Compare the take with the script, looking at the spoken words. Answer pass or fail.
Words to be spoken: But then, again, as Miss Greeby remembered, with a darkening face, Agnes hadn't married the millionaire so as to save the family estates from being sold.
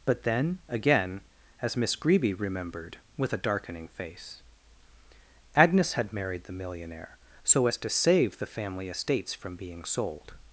fail